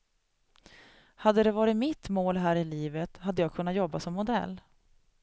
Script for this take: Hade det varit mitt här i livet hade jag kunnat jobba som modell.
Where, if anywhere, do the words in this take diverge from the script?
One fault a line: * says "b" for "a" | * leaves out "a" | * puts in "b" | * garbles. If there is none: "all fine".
* puts in "mål"